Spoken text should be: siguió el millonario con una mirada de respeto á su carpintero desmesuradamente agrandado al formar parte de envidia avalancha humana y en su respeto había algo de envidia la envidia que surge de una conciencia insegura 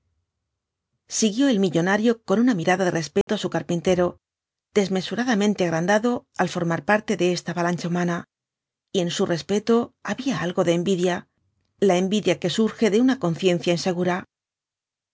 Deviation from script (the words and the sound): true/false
true